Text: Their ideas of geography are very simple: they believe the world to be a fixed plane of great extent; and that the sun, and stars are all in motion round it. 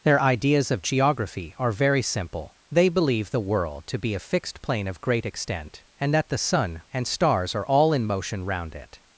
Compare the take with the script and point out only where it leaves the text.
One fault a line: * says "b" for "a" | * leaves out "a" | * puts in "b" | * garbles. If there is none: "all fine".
all fine